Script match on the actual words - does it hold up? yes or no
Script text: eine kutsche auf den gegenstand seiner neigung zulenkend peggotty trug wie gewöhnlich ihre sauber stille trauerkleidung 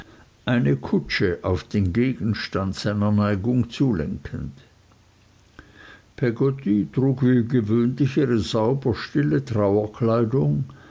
yes